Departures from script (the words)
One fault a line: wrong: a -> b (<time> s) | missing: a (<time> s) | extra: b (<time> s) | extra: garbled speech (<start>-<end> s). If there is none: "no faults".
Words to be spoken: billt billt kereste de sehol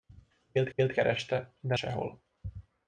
no faults